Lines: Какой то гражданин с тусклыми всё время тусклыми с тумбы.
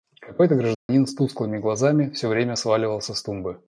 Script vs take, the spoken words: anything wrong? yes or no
yes